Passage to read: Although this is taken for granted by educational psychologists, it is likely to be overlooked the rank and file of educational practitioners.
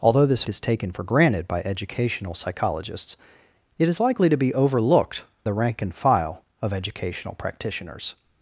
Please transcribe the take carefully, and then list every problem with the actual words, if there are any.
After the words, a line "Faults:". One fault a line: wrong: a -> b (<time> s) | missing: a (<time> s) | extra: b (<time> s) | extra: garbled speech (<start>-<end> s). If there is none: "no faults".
Although this is taken for granted by educational psychologists, it is likely to be overlooked the rank and file of educational practitioners.
Faults:
no faults